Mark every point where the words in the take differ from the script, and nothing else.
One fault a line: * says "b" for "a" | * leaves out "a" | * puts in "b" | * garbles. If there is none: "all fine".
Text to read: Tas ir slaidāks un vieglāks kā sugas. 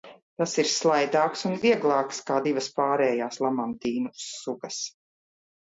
* puts in "divas pārējās lamantīnu"